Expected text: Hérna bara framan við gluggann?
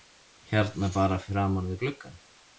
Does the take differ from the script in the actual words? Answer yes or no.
no